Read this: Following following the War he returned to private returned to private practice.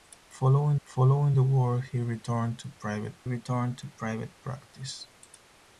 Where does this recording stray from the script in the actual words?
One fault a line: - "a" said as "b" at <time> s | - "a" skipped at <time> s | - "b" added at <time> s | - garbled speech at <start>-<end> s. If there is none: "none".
none